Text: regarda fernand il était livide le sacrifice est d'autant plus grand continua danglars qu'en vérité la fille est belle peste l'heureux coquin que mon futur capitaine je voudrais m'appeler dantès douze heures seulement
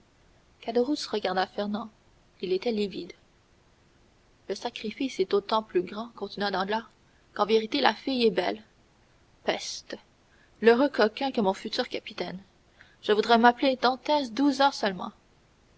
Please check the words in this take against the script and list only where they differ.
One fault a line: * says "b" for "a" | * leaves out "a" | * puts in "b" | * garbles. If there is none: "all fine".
all fine